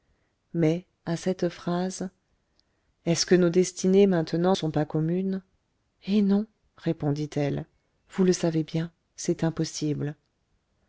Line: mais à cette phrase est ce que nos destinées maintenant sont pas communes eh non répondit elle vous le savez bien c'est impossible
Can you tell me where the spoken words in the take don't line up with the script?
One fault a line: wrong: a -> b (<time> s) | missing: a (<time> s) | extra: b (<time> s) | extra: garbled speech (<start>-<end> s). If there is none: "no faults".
no faults